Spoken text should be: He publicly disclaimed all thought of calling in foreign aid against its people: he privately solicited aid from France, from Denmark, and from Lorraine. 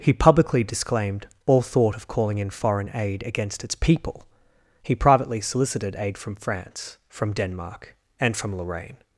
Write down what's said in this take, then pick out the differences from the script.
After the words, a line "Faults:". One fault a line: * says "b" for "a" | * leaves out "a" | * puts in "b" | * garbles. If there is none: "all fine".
He publicly disclaimed all thought of calling in foreign aid against its people: he privately solicited aid from France, from Denmark, and from Lorraine.
Faults:
all fine